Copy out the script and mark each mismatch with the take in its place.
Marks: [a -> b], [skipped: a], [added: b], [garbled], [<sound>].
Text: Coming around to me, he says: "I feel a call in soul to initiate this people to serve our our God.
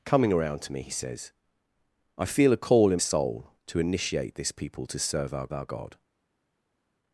Coming around to me, he says: "I feel a call in soul to initiate this people to serve our our God.